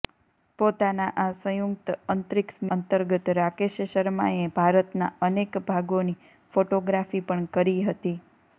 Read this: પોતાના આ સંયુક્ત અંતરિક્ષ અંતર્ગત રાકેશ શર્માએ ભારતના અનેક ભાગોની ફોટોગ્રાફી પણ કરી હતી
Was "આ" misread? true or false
false